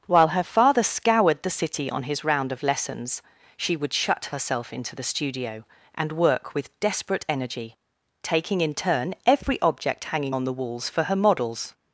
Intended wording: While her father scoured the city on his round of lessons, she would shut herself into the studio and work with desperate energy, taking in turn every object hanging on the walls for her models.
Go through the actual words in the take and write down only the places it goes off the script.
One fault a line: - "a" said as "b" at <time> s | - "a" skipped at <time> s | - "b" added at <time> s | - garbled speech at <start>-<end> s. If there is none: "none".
none